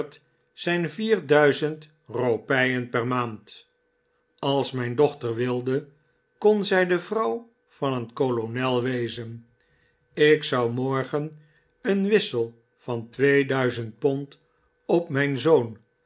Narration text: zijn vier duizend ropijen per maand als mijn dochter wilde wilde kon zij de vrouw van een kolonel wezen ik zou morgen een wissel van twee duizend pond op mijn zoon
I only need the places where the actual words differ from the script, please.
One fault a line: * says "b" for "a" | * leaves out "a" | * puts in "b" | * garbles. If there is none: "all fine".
* leaves out "wilde"